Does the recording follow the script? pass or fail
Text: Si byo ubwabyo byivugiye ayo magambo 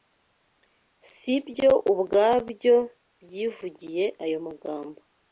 pass